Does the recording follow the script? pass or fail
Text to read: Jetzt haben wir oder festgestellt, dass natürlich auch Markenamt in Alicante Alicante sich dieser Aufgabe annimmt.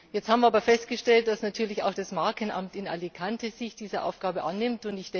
fail